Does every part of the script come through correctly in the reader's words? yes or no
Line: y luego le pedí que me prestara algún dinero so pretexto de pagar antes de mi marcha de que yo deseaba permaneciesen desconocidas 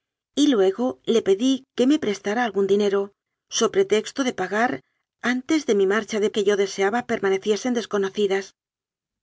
yes